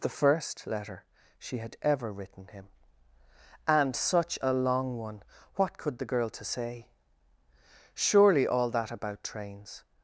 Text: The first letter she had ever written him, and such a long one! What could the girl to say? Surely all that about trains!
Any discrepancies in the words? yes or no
no